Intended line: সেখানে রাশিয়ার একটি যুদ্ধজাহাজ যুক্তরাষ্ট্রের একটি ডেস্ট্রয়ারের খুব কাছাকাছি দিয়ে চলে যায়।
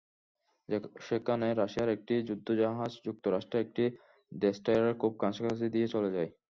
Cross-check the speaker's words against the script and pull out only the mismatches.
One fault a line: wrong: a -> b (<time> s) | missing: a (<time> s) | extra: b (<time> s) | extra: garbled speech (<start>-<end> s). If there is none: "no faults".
no faults